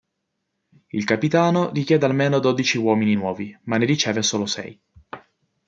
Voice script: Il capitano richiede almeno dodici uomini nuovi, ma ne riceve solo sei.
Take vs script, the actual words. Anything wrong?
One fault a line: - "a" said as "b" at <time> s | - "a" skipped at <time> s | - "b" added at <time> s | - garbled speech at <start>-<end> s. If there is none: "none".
none